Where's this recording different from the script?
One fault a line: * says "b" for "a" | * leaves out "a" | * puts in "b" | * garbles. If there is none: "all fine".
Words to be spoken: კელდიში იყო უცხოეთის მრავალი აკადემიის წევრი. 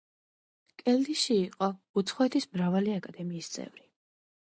all fine